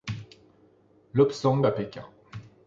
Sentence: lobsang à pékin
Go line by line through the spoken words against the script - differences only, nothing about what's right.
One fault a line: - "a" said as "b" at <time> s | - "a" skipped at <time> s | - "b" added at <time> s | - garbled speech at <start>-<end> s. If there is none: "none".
none